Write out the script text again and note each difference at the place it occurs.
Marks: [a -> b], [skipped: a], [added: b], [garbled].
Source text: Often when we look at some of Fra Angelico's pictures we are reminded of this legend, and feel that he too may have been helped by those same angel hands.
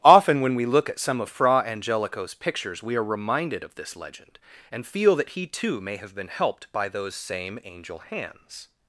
Often when we look at some of Fra Angelico's pictures we are reminded of this legend, and feel that he too may have been helped by those same angel hands.